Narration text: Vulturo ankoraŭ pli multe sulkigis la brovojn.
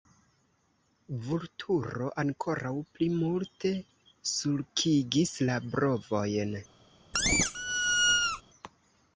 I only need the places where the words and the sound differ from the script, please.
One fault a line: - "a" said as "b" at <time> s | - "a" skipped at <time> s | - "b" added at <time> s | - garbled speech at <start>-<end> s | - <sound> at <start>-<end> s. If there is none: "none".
- squeak at 7.1-8.4 s